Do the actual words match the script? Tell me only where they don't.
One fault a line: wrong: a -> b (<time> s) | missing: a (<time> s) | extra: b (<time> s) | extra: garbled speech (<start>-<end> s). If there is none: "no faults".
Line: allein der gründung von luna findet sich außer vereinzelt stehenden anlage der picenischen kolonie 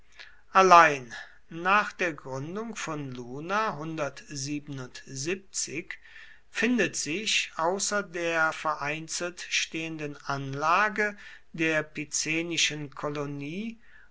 extra: nach (1.5 s)
extra: der (8.0 s)